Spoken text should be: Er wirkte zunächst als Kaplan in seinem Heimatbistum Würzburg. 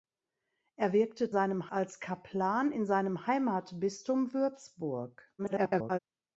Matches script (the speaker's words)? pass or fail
fail